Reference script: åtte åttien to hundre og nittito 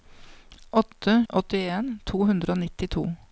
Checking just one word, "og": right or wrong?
right